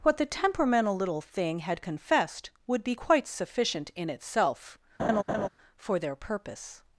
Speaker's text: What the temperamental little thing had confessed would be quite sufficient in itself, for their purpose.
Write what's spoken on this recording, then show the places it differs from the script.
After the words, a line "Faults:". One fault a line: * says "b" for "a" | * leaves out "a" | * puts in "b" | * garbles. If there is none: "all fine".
What the temperamental little thing had confessed would be quite sufficient in itself, for their purpose.
Faults:
all fine